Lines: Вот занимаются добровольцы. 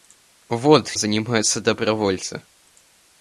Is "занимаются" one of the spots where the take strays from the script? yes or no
no